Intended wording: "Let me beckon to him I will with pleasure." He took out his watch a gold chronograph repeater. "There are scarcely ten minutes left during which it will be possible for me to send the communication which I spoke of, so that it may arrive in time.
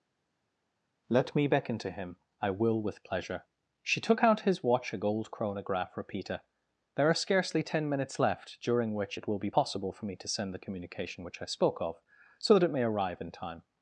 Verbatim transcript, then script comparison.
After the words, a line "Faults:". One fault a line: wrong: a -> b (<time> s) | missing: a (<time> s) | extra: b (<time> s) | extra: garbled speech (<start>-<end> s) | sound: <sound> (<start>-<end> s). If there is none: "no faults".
"Let me beckon to him I will with pleasure." She took out his watch a gold chronograph repeater. "There are scarcely ten minutes left during which it will be possible for me to send the communication which I spoke of, so that it may arrive in time.
Faults:
wrong: He -> She (3.8 s)